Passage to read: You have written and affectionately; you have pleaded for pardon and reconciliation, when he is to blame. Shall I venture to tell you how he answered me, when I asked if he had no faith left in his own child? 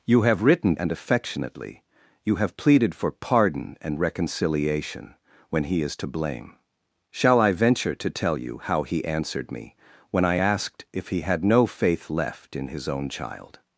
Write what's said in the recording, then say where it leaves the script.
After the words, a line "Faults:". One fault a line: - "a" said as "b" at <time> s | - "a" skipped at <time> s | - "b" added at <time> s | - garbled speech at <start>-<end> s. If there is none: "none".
You have written and affectionately; you have pleaded for pardon and reconciliation, when he is to blame. Shall I venture to tell you how he answered me, when I asked if he had no faith left in his own child?
Faults:
none